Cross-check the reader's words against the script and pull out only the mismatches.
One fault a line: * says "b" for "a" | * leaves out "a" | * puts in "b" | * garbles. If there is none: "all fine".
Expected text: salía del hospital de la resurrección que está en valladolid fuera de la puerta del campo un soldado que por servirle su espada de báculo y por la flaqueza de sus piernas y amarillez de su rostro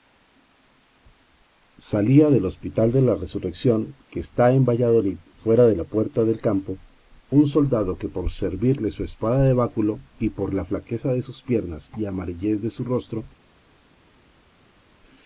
all fine